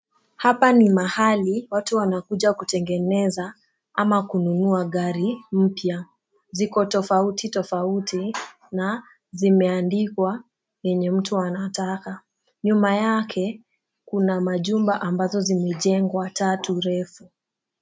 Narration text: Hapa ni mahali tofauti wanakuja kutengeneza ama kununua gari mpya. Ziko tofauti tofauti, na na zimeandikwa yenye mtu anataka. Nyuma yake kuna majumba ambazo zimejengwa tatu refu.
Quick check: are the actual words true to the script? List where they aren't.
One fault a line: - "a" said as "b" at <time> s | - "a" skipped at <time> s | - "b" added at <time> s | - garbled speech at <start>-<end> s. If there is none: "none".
- "tofauti" said as "watu" at 1.7 s
- "na" skipped at 9.0 s